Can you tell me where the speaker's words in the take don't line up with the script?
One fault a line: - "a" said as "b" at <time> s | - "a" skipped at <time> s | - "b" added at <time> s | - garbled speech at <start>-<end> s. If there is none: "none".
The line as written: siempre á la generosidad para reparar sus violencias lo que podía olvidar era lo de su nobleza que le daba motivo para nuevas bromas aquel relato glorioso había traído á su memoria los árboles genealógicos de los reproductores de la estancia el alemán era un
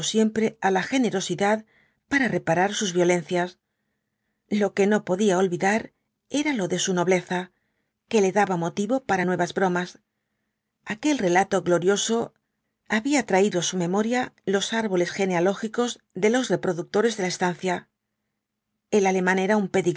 - "no" added at 4.9 s